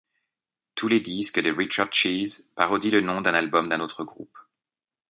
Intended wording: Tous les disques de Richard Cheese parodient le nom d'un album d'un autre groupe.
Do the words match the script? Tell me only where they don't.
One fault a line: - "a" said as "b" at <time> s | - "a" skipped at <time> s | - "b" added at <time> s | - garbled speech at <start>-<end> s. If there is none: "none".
none